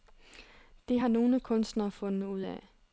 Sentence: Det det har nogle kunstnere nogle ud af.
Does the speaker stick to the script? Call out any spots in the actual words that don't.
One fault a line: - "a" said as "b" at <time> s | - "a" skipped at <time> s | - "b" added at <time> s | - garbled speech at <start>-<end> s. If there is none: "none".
- "det" skipped at 1.0 s
- "nogle" said as "fundet" at 1.9 s